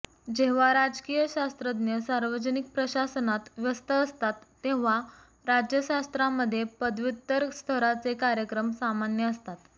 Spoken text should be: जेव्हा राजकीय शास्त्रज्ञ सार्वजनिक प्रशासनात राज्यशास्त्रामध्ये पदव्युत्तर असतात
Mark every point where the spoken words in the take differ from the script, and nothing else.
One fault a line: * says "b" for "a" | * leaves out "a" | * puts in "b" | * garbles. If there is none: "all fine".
* puts in "व्यस्त असतात तेव्हा"
* puts in "स्तराचे कार्यक्रम सामान्य"